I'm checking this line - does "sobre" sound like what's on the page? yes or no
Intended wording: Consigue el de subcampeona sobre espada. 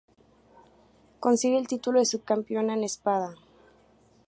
no